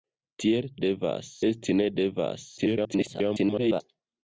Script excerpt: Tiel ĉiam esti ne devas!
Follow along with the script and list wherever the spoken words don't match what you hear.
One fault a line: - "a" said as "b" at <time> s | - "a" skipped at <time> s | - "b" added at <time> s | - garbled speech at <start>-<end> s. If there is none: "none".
- "ĉiam" said as "devas" at 0.8 s
- garbled speech at 2.6-3.8 s